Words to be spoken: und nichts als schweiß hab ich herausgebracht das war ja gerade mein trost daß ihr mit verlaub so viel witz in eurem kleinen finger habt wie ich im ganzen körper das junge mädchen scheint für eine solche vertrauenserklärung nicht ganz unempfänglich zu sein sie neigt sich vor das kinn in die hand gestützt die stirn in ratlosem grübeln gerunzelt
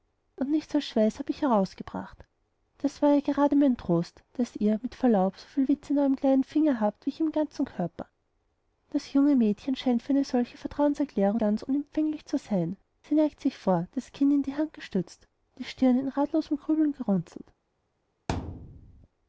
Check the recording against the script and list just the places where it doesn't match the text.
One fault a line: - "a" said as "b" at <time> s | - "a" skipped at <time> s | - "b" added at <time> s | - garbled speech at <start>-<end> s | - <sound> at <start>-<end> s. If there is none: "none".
- "nicht" skipped at 11.4 s
- thud at 18.3-19.1 s